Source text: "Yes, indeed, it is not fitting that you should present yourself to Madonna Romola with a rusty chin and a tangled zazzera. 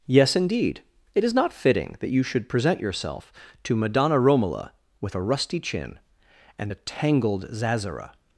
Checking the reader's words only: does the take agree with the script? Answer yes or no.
yes